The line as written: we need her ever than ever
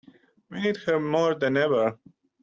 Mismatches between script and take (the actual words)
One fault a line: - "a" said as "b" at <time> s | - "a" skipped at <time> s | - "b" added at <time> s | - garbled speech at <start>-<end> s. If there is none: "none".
- "ever" said as "more" at 1.0 s